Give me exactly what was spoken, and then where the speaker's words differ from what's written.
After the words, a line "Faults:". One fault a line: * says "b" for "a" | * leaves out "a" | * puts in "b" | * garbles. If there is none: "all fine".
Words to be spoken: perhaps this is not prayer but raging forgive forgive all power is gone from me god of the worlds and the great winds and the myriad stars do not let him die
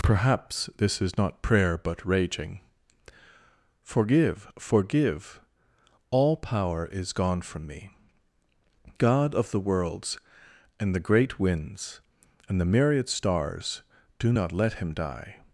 perhaps this is not prayer but raging forgive forgive all power is gone from me god of the worlds and the great winds and the myriad stars do not let him die
Faults:
all fine